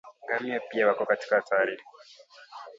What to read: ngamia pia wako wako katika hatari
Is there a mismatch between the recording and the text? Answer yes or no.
yes